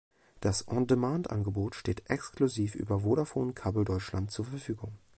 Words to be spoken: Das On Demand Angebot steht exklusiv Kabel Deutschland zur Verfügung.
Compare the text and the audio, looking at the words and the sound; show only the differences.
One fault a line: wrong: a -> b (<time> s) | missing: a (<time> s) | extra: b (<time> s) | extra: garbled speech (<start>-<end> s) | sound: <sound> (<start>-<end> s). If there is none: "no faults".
extra: über Vodafone (2.7 s)